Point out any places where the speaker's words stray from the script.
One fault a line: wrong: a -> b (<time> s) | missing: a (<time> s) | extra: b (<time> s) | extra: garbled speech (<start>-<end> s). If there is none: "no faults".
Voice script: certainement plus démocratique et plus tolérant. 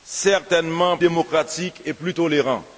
missing: plus (1.0 s)